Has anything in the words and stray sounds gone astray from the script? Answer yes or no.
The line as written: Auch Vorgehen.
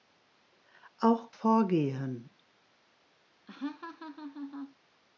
yes